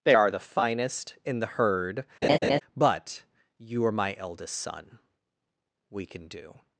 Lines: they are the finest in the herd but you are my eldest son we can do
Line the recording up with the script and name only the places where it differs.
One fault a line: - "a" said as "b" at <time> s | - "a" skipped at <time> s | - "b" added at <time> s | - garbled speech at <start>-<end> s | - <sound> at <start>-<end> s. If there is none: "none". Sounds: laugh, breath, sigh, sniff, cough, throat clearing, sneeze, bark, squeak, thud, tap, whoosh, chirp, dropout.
- laugh at 2.2-2.6 s